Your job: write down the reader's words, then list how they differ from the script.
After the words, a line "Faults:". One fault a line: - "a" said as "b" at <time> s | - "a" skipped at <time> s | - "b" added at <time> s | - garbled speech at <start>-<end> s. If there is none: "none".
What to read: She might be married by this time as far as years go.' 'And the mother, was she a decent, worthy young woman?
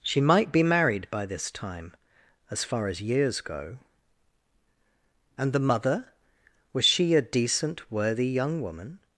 She might be married by this time as far as years go.' 'And the mother, was she a decent, worthy young woman?
Faults:
none